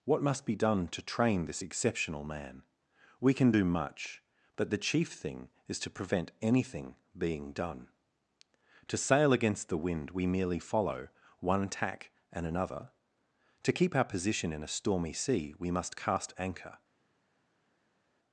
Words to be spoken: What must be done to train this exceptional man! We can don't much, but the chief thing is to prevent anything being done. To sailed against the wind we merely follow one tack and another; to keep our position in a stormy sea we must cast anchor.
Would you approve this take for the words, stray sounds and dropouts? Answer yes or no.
no